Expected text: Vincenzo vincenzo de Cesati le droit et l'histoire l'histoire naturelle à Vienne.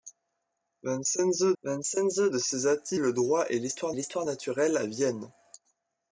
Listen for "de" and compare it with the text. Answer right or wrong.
right